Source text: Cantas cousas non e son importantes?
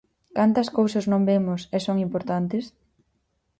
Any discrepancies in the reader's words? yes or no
yes